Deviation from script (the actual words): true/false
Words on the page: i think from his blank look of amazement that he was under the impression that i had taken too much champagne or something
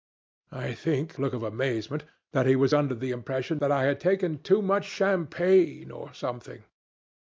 true